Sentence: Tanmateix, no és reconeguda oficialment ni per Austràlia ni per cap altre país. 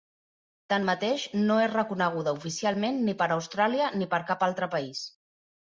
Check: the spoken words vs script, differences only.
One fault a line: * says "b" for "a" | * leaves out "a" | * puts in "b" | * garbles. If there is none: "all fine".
all fine